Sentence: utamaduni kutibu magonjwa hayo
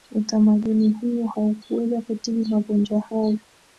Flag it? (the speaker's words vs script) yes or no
yes